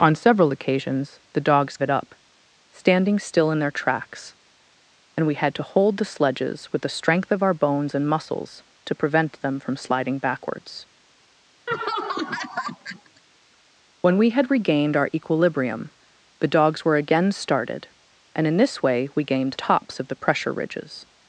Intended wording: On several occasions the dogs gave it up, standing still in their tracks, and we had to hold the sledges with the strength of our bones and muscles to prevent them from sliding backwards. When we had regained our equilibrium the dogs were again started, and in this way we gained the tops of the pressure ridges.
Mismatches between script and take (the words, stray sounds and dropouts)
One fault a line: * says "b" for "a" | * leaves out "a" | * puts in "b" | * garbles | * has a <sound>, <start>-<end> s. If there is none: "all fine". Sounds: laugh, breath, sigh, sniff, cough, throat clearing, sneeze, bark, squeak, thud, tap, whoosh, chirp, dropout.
* leaves out "gave"
* has a laugh, 11.7-13.2 s
* leaves out "the"